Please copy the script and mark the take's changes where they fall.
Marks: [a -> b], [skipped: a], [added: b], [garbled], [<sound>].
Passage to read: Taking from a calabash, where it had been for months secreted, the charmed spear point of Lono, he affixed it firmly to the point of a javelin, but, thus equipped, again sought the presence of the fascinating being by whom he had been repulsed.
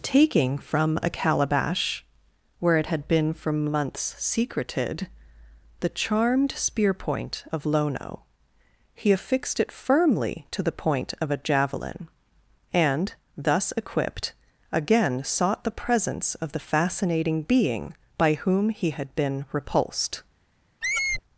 Taking from a calabash, where it had been for months secreted, the charmed spear point of Lono, he affixed it firmly to the point of a javelin, [but, -> and] thus equipped, again sought the presence of the fascinating being by whom he had been repulsed. [squeak]